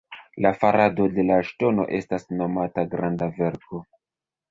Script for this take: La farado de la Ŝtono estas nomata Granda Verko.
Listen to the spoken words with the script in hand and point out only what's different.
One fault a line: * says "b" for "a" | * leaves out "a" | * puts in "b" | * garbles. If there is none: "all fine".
all fine